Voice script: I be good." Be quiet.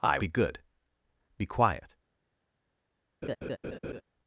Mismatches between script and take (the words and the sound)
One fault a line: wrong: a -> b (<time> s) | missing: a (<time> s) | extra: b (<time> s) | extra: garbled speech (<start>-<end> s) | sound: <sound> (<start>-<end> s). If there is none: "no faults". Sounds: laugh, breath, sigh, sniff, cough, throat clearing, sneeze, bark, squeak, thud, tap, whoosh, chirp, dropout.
sound: laugh (3.2-4.0 s)